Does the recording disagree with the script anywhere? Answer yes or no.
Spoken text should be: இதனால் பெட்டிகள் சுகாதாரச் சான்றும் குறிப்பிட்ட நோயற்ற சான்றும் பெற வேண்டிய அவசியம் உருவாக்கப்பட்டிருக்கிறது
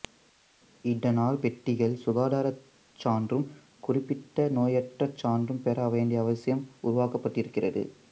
no